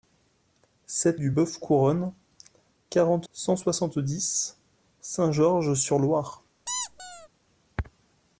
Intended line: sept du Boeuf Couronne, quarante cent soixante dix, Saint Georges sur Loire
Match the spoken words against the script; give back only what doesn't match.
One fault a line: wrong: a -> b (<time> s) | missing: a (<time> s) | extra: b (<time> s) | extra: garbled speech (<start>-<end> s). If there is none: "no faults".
no faults